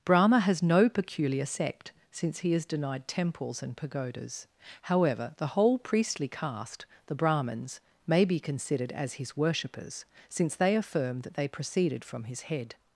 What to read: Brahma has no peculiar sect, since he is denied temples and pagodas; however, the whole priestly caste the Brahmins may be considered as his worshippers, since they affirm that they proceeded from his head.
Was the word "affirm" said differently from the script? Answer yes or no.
no